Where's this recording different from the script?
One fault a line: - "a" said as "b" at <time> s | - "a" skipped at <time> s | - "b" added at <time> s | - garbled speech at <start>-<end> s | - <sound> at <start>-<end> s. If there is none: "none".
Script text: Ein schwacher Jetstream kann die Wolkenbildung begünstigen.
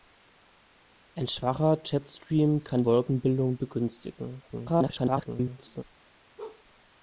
- "die" skipped at 2.8 s
- garbled speech at 4.5-5.8 s
- bark at 6.4-6.6 s